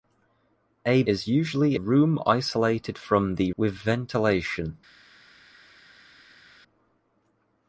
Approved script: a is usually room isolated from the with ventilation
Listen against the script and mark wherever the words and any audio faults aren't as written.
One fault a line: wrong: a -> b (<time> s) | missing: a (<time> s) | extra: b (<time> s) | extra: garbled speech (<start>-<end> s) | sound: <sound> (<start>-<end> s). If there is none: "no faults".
no faults